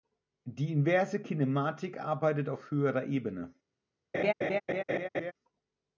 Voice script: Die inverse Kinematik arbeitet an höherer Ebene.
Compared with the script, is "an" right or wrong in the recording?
wrong